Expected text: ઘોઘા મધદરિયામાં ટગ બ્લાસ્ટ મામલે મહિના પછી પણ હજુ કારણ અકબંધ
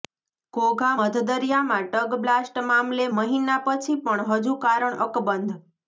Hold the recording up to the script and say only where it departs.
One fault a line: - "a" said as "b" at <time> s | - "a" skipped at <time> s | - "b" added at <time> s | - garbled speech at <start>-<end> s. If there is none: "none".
none